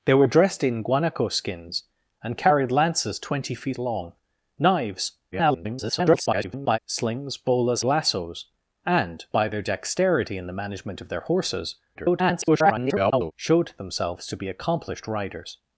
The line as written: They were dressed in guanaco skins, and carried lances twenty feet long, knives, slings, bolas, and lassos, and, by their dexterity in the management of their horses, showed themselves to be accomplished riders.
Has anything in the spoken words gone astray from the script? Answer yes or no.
yes